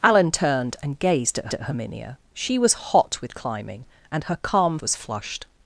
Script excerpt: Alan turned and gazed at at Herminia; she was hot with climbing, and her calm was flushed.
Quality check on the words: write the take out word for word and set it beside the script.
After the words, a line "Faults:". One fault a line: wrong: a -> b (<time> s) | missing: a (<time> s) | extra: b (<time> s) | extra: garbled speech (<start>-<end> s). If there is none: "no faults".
Alan turned and gazed at at Herminia; she was hot with climbing, and her calm was flushed.
Faults:
no faults